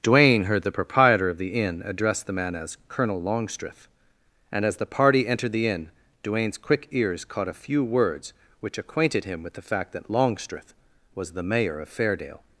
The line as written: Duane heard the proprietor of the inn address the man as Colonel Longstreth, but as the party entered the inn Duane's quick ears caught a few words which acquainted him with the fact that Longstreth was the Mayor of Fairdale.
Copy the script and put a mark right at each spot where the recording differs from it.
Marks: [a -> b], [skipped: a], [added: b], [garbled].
Duane heard the proprietor of the inn address the man as Colonel Longstreth, [but -> and] as the party entered the inn Duane's quick ears caught a few words which acquainted him with the fact that Longstreth was the Mayor of Fairdale.